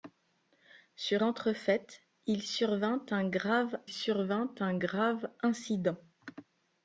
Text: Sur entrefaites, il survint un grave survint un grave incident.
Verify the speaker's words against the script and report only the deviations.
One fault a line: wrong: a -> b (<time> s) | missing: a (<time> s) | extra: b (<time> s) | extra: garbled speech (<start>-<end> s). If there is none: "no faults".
no faults